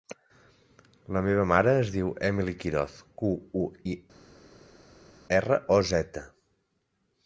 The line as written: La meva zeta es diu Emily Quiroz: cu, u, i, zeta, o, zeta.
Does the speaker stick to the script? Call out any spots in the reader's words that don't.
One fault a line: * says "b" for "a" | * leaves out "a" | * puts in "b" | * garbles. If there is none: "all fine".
* says "mare" for "zeta"
* says "erra" for "zeta"